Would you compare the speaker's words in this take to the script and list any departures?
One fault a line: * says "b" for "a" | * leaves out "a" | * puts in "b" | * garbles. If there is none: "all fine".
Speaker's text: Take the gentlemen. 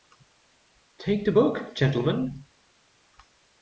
* puts in "book"